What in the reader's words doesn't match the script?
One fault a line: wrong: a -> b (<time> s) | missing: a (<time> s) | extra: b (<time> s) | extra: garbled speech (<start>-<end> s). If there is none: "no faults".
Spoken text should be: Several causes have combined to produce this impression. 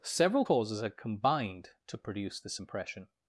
wrong: have -> had (0.8 s)